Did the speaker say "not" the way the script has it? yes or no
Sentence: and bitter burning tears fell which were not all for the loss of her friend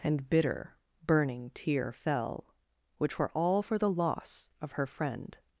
no